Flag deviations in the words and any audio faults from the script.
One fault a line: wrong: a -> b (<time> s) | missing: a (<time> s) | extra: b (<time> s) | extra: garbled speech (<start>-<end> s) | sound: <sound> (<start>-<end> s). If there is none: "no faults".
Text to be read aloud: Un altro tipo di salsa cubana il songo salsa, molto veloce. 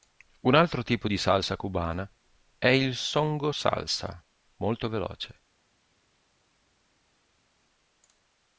extra: è (2.6 s)